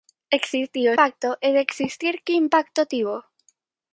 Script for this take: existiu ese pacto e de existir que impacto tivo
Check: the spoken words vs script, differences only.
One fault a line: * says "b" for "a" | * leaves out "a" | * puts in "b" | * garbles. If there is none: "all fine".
* leaves out "ese"